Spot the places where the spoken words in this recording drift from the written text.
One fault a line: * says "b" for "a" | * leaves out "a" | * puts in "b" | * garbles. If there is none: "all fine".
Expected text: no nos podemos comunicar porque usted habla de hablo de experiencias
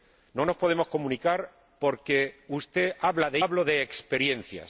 all fine